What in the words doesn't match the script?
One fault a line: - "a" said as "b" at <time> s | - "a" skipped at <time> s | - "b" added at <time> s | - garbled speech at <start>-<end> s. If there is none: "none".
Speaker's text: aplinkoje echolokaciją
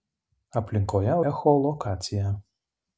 none